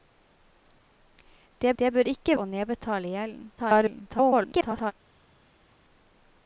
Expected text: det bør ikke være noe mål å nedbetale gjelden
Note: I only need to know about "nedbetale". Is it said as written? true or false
true